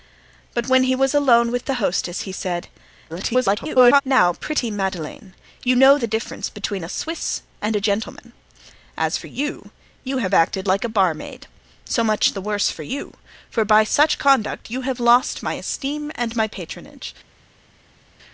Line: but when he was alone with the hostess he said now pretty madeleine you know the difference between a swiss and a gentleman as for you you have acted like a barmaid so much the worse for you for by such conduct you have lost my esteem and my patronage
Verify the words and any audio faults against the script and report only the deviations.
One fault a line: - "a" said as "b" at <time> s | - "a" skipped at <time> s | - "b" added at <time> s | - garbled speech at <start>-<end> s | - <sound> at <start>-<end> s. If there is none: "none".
- garbled speech at 3.1-4.0 s